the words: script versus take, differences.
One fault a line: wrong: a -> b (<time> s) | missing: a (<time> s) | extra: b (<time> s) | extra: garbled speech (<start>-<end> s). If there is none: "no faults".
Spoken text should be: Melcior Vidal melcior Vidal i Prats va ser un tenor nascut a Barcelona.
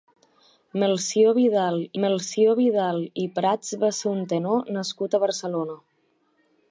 no faults